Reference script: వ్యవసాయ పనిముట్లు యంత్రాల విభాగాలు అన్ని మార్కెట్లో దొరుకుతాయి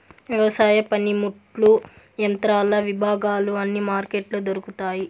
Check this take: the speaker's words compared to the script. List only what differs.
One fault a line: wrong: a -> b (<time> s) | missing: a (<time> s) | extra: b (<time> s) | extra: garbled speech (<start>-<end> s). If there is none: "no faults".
no faults